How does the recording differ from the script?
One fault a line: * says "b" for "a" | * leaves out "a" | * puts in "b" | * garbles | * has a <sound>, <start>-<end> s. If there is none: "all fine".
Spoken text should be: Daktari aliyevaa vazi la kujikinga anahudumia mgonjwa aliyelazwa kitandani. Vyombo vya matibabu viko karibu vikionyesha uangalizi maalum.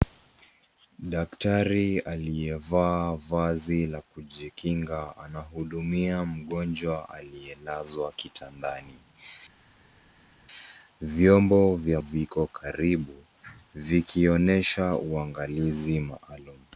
* leaves out "matibabu"